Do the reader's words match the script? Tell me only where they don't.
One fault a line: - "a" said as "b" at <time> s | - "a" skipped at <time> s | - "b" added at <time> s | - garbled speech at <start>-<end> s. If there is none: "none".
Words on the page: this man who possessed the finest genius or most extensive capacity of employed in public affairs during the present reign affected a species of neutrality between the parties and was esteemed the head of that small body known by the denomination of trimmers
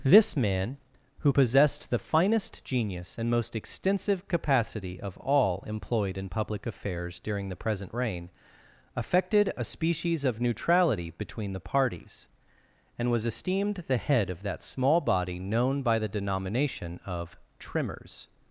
- "or" said as "and" at 3.2 s
- "all" added at 5.2 s